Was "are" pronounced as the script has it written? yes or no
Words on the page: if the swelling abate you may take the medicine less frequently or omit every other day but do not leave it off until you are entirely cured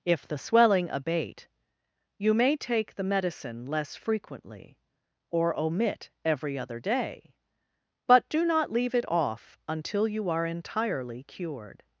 yes